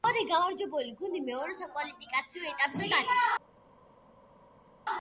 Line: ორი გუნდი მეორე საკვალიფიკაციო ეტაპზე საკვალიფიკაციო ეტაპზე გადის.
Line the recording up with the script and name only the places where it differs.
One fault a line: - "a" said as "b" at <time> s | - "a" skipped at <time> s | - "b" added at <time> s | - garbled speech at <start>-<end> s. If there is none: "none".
- "გამარჯვებული" added at 0.3 s
- "საკვალიფიკაციო ეტაპზე" skipped at 2.9 s